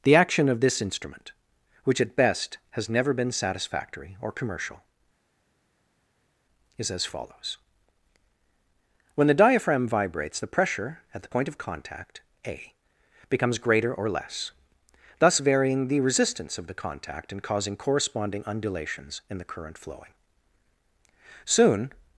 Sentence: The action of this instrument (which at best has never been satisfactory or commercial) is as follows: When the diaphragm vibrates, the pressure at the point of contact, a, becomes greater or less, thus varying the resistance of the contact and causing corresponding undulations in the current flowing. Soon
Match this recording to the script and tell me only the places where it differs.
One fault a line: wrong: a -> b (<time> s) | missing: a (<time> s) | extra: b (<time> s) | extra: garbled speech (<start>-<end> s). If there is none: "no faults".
no faults